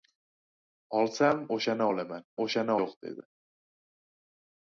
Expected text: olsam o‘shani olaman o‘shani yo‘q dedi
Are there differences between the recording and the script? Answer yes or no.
no